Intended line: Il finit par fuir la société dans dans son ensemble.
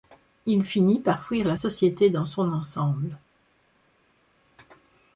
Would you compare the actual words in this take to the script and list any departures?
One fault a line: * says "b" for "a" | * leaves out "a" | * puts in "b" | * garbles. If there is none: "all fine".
* leaves out "dans"